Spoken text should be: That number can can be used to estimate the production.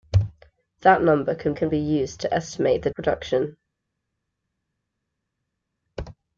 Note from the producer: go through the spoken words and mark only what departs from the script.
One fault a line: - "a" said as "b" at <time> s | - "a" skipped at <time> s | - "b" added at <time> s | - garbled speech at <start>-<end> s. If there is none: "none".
none